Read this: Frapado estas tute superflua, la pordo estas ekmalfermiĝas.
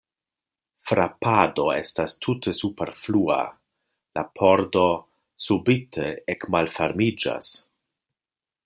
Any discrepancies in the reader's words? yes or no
yes